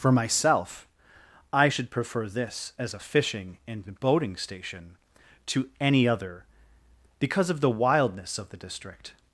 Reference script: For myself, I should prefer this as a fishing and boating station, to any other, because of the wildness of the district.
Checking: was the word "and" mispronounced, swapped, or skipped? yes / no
no